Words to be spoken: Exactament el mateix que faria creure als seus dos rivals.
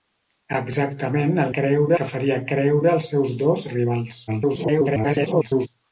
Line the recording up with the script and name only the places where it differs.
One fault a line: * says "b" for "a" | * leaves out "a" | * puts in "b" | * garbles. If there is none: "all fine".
* says "creure" for "mateix"
* garbles